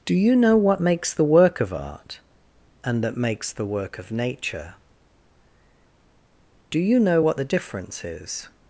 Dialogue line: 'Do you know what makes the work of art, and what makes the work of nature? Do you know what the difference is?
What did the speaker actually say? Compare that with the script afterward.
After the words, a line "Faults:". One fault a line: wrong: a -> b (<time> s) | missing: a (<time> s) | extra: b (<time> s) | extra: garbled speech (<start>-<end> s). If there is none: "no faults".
'Do you know what makes the work of art, and that makes the work of nature? Do you know what the difference is?
Faults:
wrong: what -> that (3.0 s)